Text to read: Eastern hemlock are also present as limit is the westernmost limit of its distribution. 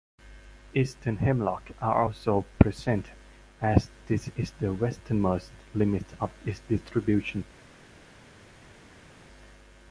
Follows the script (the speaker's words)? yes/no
no